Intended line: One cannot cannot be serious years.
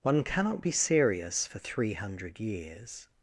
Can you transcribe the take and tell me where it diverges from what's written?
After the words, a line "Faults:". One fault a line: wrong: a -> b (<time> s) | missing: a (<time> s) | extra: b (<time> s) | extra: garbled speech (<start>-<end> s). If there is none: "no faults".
One cannot be serious for three hundred years.
Faults:
missing: cannot (0.6 s)
extra: for three hundred (1.4 s)